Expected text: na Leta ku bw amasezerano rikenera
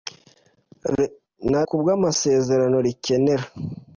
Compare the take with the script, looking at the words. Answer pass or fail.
fail